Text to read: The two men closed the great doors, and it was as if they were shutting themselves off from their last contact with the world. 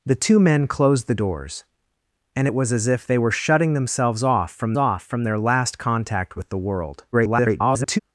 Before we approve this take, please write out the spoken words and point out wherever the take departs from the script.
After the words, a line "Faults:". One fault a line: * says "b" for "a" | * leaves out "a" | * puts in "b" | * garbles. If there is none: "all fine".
The two men closed the doors, and it was as if they were shutting themselves off from off from their last contact with the world. [garbled]
Faults:
* leaves out "great"
* puts in "off from"
* garbles